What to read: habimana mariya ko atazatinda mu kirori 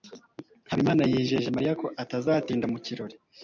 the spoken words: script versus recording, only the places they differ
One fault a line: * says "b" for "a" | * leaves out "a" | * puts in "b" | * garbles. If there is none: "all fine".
* puts in "yijeje"